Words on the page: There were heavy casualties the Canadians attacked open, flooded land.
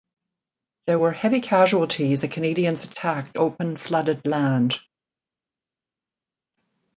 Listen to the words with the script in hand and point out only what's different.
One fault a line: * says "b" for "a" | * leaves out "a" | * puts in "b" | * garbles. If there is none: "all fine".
all fine